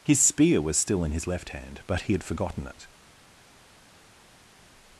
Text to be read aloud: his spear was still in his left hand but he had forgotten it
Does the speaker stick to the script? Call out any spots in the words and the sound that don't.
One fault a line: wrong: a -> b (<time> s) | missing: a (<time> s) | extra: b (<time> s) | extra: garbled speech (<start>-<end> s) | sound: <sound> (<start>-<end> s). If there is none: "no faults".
no faults